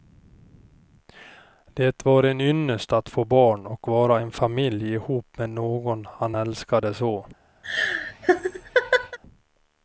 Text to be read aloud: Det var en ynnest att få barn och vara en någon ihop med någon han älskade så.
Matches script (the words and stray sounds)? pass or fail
fail